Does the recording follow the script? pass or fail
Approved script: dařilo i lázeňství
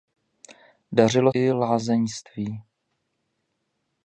pass